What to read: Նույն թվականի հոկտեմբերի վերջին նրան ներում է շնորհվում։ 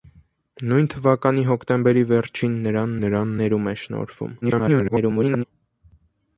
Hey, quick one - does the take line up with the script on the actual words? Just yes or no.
no